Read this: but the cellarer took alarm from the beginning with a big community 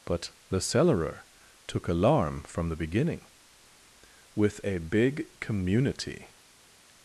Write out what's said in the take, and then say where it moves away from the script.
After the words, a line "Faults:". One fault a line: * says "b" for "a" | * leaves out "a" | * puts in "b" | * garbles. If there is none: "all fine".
but the cellarer took alarm from the beginning with a big community
Faults:
all fine